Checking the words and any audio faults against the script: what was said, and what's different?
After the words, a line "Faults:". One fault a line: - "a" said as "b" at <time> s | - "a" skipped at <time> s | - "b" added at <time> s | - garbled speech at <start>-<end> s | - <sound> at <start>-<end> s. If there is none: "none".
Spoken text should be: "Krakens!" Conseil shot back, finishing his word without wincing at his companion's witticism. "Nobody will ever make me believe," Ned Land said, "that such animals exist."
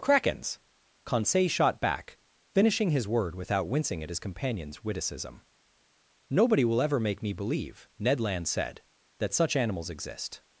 "Krakens!" Conseil shot back, finishing his word without wincing at his companion's witticism. "Nobody will ever make me believe," Ned Land said, "that such animals exist."
Faults:
none